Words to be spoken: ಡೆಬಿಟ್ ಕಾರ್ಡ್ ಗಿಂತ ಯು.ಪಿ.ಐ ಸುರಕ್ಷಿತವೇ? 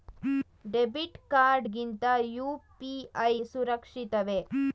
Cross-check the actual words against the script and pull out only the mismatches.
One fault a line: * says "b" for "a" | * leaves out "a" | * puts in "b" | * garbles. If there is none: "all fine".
all fine